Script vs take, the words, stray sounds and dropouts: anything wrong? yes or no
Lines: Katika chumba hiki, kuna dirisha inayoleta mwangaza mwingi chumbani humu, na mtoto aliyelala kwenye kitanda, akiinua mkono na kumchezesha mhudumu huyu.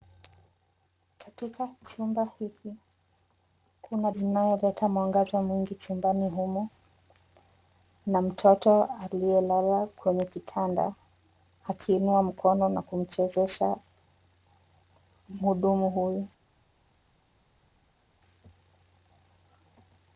yes